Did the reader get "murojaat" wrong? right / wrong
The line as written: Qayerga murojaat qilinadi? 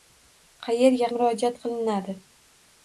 right